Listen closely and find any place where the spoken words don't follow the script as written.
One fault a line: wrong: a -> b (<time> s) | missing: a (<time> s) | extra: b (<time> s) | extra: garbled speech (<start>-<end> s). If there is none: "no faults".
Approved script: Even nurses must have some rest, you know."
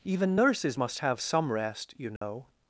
no faults